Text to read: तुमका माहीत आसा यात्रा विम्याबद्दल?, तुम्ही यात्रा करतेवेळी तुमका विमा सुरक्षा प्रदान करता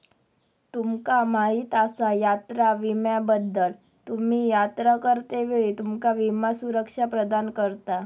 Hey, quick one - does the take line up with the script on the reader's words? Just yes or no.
yes